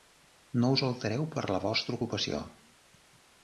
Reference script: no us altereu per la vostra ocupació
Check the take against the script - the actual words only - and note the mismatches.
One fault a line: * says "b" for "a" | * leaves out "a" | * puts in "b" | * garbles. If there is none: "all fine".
all fine